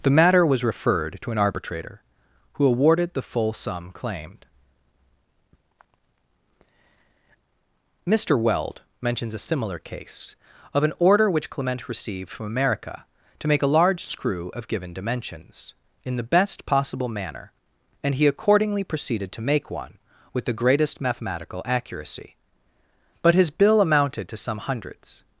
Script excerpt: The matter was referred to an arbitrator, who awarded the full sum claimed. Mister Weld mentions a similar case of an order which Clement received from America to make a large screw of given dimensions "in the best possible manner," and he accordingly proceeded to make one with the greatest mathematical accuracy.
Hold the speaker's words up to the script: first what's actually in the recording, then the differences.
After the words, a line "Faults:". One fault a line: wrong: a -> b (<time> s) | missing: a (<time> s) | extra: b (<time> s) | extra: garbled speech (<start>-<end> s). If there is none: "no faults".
The matter was referred to an arbitrator, who awarded the full sum claimed. Mister Weld mentions a similar case of an order which Clement received from America to make a large screw of given dimensions "in the best possible manner," and he accordingly proceeded to make one with the greatest mathematical accuracy. But his bill amounted to some hundreds
Faults:
extra: But his bill amounted to some hundreds (23.2 s)